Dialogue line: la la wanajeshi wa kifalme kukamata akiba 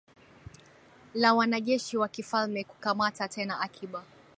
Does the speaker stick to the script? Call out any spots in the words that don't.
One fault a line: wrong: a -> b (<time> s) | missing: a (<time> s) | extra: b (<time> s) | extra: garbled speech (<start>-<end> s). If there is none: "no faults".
missing: la (1.3 s)
extra: tena (3.3 s)